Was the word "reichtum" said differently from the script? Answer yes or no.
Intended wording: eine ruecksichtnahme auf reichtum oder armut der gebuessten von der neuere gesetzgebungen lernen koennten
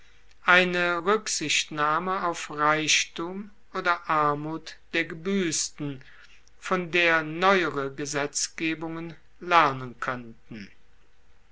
no